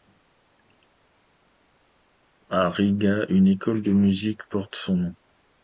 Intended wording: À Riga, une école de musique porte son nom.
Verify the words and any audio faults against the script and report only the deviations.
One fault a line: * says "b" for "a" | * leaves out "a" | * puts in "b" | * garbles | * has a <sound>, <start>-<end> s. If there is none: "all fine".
all fine